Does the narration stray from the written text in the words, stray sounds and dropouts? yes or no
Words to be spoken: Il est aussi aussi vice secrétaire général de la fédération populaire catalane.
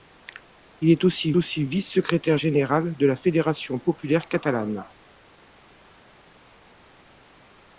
no